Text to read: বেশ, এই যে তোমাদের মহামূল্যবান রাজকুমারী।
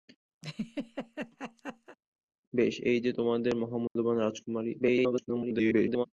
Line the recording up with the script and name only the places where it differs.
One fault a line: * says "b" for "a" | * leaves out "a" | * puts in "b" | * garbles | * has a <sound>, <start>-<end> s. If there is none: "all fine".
* has a laugh, 0.4-2.0 s
* has a dropout, 3.9-4.0 s
* garbles